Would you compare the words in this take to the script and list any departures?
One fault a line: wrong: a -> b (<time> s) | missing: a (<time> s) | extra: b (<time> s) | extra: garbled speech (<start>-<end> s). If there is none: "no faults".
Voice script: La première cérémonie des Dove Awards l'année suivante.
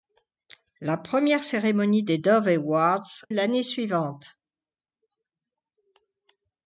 no faults